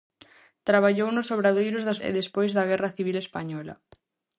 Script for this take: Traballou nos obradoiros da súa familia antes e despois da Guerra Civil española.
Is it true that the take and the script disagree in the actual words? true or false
true